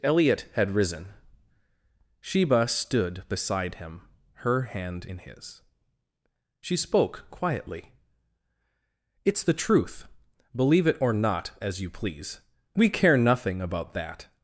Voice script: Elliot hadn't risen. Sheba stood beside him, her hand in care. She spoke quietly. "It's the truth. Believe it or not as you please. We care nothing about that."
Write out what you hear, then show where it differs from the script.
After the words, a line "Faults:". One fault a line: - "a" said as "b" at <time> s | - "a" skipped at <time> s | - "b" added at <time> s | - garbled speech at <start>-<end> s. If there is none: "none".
Elliot had risen. Sheba stood beside him, her hand in his. She spoke quietly. "It's the truth. Believe it or not as you please. We care nothing about that."
Faults:
- "hadn't" said as "had" at 0.5 s
- "care" said as "his" at 5.2 s